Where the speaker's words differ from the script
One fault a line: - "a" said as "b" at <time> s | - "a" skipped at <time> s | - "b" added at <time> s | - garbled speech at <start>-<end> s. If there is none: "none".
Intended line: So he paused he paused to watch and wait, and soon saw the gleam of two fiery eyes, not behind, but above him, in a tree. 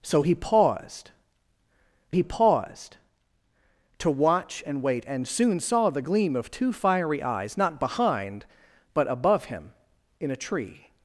none